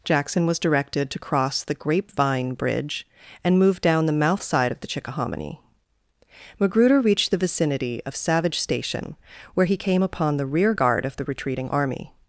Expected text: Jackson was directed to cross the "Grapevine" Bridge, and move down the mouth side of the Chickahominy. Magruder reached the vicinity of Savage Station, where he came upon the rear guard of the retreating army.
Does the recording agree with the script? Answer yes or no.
yes